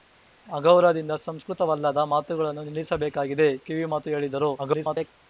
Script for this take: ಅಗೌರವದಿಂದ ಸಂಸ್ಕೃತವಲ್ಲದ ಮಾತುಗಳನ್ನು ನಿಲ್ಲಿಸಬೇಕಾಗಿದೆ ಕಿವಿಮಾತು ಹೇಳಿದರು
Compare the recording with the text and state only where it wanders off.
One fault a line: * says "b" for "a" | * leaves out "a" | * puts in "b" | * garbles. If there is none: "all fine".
* garbles